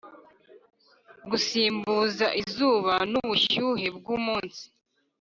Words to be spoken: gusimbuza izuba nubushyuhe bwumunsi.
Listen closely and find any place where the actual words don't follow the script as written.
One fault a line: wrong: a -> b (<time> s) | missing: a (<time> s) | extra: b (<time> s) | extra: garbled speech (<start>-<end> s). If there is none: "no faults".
no faults